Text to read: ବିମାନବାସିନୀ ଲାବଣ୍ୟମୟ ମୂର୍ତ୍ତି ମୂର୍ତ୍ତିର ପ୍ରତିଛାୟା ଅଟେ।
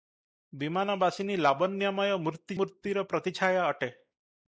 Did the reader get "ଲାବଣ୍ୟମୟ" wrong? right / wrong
right